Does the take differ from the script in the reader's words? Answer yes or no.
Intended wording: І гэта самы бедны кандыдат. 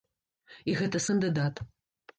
yes